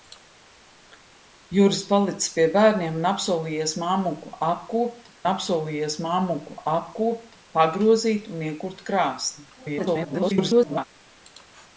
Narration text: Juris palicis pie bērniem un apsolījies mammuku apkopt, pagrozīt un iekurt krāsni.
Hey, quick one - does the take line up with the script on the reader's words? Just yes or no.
no